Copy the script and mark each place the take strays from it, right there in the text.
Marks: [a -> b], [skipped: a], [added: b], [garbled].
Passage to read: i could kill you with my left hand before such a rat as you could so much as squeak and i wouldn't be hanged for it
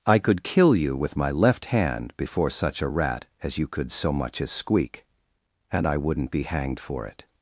i could kill you with my left hand before such a rat as you could so much as squeak and i wouldn't be hanged for it